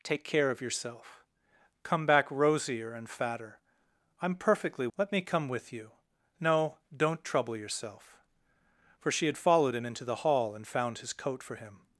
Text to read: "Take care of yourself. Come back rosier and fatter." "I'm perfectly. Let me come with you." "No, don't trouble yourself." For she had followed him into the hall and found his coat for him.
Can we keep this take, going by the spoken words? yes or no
yes